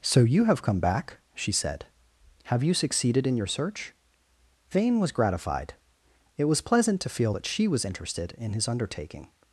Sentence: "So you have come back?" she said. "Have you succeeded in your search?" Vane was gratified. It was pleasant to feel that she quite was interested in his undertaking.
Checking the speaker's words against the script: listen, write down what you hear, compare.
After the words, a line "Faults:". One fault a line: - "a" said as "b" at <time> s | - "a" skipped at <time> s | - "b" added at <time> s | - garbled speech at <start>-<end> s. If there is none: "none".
"So you have come back?" she said. "Have you succeeded in your search?" Vane was gratified. It was pleasant to feel that she was interested in his undertaking.
Faults:
- "quite" skipped at 7.7 s